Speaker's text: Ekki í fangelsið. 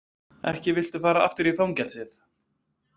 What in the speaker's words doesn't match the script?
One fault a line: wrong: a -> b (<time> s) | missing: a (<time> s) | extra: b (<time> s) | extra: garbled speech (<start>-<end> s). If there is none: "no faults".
extra: viltu fara aftur (0.8 s)